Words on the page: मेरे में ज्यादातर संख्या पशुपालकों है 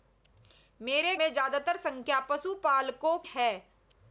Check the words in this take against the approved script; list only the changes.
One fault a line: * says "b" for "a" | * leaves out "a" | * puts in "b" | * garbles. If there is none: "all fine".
all fine